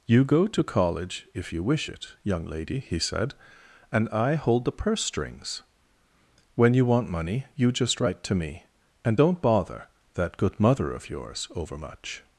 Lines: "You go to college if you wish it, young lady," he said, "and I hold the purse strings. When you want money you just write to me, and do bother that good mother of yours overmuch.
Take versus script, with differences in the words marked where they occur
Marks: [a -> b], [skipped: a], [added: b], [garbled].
"You go to college if you wish it, young lady," he said, "and I hold the purse strings. When you want money you just write to me, and [do -> don't] bother that good mother of yours overmuch.